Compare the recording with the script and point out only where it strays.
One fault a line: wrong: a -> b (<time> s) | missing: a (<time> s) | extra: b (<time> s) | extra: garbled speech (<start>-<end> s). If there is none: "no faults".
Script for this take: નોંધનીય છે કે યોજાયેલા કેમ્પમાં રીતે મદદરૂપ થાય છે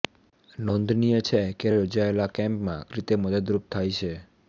no faults